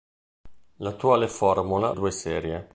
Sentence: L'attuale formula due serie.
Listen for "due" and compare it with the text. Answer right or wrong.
right